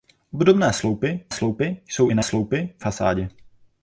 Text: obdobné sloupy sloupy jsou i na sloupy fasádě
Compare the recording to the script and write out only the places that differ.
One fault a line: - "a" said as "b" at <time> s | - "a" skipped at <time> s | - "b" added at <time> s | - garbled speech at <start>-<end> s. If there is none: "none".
none